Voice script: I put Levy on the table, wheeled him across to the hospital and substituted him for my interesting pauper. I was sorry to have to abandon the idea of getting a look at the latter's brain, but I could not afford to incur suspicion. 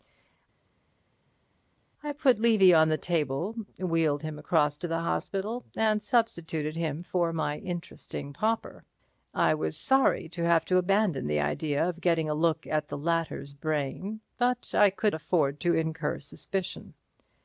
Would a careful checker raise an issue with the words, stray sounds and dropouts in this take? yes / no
yes